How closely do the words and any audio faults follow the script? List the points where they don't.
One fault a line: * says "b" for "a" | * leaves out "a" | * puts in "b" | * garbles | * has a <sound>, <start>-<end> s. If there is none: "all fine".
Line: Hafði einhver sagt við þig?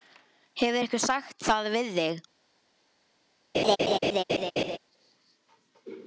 * says "Hefur" for "Hafði"
* puts in "það"
* has a laugh, 3.5-4.8 s